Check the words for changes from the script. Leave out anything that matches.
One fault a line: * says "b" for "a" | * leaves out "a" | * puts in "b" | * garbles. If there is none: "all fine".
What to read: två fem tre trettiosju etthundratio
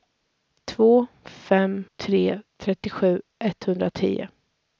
all fine